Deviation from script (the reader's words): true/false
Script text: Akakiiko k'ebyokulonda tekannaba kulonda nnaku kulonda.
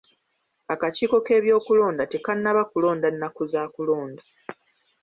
true